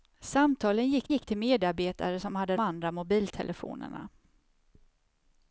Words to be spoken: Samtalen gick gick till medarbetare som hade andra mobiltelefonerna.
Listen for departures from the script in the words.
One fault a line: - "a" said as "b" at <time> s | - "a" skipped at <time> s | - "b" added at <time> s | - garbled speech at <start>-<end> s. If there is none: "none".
none